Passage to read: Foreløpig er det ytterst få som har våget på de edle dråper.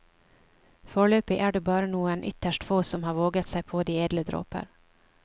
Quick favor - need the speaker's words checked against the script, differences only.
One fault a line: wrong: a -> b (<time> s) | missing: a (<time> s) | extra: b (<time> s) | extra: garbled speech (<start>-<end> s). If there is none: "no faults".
extra: bare noen (1.7 s)
extra: seg (3.5 s)